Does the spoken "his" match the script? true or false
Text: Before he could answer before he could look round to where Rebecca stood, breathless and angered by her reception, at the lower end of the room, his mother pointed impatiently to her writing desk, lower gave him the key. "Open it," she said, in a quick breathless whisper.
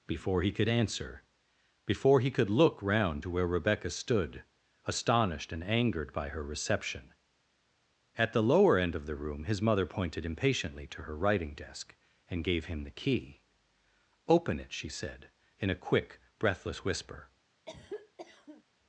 true